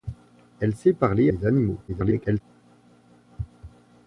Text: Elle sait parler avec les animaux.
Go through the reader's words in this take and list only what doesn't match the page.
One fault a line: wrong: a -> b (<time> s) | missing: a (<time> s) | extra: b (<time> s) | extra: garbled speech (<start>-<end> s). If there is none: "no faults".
missing: avec (1.3 s)
extra: garbled speech (1.9-2.4 s)